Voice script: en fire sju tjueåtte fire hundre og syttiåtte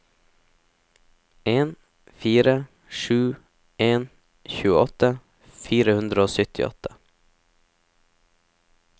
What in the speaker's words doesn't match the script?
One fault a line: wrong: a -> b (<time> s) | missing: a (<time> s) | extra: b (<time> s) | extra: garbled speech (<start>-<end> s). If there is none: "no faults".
extra: en (3.9 s)